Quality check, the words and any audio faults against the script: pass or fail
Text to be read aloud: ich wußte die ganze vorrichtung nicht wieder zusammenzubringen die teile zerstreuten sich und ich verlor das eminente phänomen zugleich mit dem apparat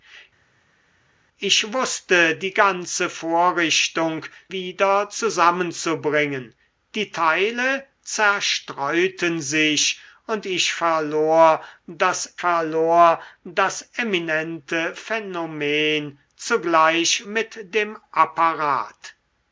fail